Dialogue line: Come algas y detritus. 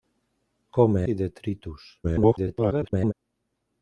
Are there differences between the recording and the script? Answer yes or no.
yes